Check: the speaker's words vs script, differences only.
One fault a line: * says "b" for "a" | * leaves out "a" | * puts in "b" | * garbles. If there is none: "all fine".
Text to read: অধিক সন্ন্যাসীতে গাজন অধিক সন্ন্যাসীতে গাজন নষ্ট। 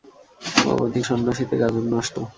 * leaves out "অধিক সন্ন্যাসীতে গাজন"